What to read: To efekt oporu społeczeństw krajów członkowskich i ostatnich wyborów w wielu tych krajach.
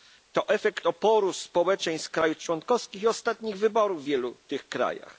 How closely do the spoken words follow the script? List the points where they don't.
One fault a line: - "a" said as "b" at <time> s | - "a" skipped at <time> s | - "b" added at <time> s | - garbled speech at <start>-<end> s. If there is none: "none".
none